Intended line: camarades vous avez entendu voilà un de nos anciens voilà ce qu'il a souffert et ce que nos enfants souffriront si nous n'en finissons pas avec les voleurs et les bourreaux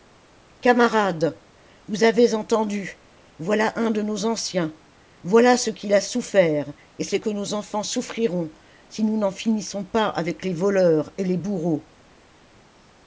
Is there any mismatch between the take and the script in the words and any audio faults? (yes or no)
no